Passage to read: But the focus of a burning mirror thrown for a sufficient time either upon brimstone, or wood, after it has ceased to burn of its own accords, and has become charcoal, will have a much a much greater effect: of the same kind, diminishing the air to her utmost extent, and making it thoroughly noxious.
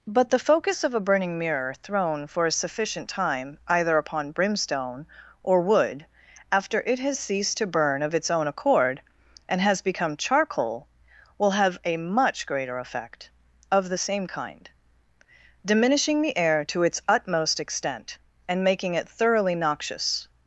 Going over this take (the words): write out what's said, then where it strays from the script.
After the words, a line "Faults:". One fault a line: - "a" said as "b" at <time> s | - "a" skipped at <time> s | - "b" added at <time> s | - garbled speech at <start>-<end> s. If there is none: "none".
But the focus of a burning mirror thrown for a sufficient time either upon brimstone, or wood, after it has ceased to burn of its own accord, and has become charcoal, will have a much greater effect: of the same kind, diminishing the air to its utmost extent, and making it thoroughly noxious.
Faults:
- "accords" said as "accord" at 8.5 s
- "a much" skipped at 12.5 s
- "her" said as "its" at 16.8 s